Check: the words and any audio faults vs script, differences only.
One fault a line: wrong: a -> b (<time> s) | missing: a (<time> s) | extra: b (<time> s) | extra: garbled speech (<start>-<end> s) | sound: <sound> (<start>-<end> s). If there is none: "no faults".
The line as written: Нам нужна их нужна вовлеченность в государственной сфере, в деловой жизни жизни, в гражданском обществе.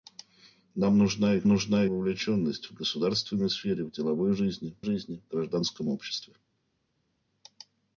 no faults